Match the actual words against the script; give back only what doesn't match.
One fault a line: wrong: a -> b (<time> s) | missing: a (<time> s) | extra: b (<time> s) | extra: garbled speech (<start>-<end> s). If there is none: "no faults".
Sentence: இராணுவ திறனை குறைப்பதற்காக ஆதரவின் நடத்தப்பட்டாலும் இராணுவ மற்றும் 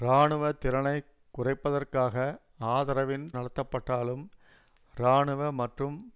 no faults